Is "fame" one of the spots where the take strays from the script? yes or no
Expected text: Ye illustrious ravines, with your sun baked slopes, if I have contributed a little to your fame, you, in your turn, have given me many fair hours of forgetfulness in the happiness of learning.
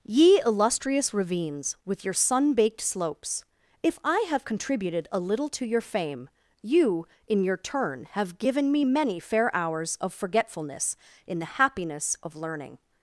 no